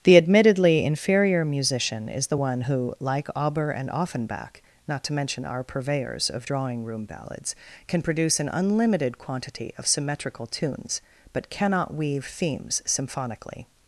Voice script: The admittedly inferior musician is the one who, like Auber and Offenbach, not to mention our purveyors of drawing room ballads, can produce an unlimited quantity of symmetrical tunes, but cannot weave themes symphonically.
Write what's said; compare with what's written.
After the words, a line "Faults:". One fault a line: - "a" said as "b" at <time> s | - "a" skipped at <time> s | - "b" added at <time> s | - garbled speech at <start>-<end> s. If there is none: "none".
The admittedly inferior musician is the one who, like Auber and Offenbach, not to mention our purveyors of drawing room ballads, can produce an unlimited quantity of symmetrical tunes, but cannot weave themes symphonically.
Faults:
none